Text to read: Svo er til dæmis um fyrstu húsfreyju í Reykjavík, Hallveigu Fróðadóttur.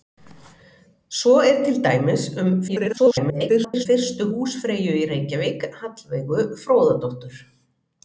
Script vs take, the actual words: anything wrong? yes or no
yes